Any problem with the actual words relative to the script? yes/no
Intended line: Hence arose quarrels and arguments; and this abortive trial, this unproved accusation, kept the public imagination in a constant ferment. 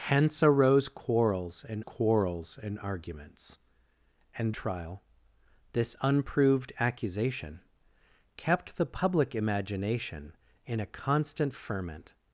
yes